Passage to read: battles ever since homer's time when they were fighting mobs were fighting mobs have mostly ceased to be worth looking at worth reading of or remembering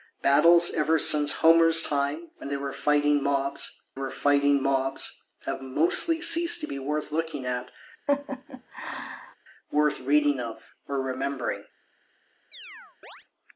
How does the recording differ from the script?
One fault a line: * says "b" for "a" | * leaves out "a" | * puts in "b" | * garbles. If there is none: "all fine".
all fine